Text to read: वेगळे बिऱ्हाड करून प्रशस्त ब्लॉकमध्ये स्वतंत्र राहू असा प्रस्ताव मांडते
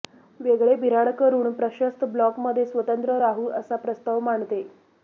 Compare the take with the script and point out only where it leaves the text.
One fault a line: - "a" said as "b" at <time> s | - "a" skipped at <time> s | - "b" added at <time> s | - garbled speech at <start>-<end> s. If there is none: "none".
none